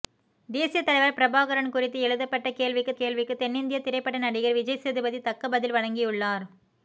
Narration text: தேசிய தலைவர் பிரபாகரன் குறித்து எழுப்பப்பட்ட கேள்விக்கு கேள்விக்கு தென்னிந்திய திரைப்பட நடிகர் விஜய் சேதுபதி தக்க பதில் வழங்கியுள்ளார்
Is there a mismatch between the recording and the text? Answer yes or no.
no